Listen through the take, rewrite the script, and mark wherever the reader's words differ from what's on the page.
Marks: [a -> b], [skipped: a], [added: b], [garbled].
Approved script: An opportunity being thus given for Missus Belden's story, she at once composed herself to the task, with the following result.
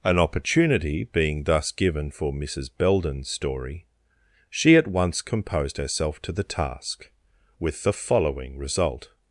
An opportunity being thus given for Missus Belden's story, she at once composed herself to the task, with the following result.